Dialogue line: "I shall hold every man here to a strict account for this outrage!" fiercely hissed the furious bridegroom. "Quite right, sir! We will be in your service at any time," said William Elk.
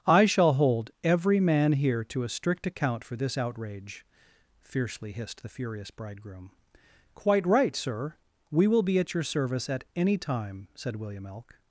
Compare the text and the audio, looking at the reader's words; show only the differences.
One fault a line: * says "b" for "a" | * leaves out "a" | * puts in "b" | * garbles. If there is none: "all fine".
* says "at" for "in"